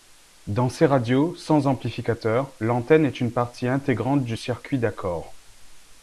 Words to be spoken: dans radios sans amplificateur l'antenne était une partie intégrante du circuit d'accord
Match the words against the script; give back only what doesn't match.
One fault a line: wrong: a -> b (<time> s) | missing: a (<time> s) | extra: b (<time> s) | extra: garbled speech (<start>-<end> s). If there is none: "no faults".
extra: ces (0.7 s)
wrong: était -> est (3.0 s)